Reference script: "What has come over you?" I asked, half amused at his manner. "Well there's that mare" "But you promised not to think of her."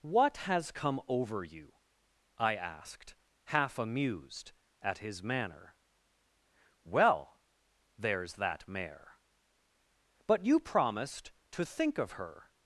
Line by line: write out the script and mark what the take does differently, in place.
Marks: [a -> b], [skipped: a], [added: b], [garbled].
"What has come over you?" I asked, half amused at his manner. "Well there's that mare" "But you promised [skipped: not] to think of her."